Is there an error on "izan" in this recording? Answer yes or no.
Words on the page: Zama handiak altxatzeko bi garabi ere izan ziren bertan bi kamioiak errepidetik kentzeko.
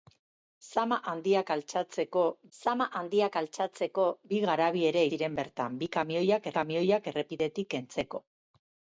yes